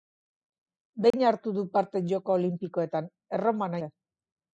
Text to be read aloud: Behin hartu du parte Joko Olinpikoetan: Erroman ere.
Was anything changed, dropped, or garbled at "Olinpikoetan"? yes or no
no